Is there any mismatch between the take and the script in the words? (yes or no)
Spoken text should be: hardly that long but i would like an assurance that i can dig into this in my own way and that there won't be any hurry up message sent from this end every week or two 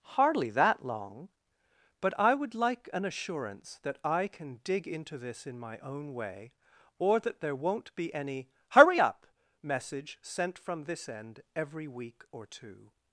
yes